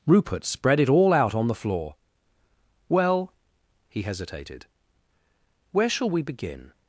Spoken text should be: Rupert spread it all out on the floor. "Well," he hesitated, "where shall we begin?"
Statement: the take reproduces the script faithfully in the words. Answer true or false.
true